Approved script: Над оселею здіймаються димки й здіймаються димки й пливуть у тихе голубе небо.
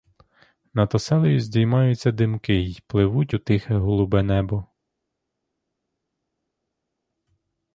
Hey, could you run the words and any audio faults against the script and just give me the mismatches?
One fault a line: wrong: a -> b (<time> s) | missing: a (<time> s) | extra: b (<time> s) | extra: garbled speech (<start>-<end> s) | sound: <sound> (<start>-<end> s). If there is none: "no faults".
missing: здіймаються димки й (2.8 s)